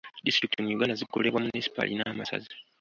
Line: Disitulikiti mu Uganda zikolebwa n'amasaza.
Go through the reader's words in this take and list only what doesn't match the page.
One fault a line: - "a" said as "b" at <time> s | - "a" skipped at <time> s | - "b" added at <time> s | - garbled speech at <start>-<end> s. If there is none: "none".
- "munisipaali" added at 1.4 s